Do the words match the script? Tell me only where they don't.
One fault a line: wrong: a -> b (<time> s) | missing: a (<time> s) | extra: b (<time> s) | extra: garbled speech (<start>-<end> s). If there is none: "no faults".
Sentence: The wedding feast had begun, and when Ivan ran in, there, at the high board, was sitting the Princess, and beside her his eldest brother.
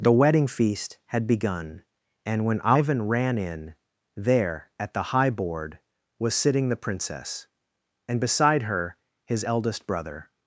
no faults